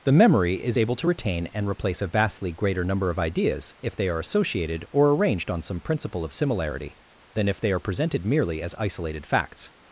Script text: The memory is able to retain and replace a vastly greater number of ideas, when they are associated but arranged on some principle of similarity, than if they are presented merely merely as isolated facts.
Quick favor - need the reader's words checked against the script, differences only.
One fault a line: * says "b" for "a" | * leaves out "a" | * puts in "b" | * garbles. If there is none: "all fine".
* says "if" for "when"
* says "or" for "but"
* leaves out "merely"